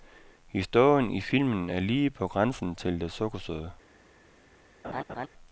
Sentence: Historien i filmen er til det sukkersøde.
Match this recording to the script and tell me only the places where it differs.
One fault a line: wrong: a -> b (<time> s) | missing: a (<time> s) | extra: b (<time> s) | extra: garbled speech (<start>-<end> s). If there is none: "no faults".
extra: lige på grænsen (1.8 s)